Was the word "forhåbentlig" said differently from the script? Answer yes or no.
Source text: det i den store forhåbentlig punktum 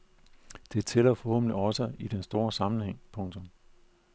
yes